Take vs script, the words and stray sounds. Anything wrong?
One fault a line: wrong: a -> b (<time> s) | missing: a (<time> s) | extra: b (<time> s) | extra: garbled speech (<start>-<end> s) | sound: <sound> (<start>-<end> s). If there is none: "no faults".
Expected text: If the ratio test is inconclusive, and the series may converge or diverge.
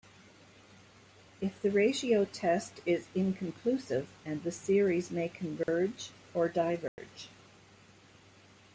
sound: dropout (5.6-5.7 s)
sound: dropout (6.9-7.0 s)